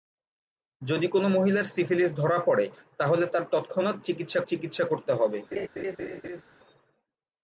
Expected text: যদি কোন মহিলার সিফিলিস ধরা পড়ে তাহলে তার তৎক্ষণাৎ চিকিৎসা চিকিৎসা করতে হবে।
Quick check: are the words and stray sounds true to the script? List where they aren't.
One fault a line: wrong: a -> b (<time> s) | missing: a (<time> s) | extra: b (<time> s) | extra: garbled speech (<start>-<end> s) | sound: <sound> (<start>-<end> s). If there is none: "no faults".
sound: laugh (5.5-6.4 s)